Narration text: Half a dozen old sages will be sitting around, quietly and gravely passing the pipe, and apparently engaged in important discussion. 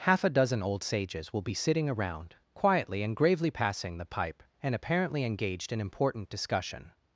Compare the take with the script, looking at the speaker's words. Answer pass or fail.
pass